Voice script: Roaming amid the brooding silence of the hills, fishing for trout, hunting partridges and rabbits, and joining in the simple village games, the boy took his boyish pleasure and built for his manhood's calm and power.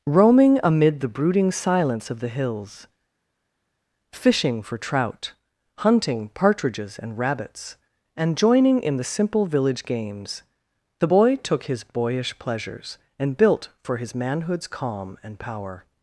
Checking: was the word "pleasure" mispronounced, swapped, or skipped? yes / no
yes